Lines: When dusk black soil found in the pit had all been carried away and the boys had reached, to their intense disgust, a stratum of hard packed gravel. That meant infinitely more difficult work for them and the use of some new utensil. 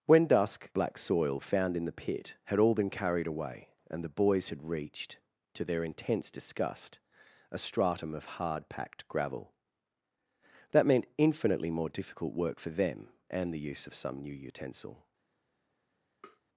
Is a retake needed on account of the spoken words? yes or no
no